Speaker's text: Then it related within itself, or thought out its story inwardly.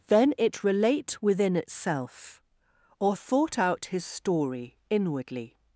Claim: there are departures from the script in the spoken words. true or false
true